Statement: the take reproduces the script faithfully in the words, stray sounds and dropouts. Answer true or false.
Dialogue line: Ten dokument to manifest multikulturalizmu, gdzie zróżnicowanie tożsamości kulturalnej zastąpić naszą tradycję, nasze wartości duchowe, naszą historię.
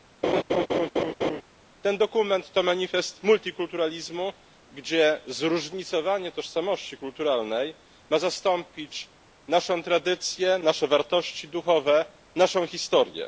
false